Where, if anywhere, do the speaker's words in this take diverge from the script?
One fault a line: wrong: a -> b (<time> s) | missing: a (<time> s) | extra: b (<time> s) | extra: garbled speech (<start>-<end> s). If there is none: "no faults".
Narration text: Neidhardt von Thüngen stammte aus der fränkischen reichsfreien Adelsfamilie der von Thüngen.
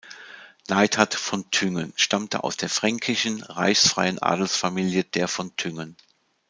no faults